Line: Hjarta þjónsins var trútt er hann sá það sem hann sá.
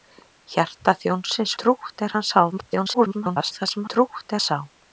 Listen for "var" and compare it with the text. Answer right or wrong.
wrong